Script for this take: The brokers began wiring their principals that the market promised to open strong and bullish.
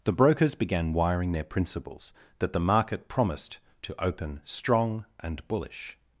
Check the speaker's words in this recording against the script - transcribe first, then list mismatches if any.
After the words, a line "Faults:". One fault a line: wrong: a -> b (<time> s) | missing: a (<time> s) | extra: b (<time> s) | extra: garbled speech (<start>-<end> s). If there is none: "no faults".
The brokers began wiring their principals that the market promised to open strong and bullish.
Faults:
no faults